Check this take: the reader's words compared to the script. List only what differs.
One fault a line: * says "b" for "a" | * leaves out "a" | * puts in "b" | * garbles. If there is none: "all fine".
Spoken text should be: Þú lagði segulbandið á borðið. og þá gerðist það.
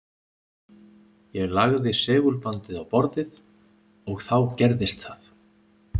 * says "Ég" for "Þú"